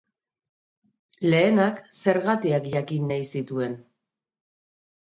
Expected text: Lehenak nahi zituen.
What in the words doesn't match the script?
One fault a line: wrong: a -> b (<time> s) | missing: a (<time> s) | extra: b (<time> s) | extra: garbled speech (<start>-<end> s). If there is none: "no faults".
extra: zergatiak jakin (2.0 s)